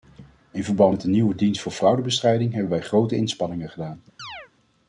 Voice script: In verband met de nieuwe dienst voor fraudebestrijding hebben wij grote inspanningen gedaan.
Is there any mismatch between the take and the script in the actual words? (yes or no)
no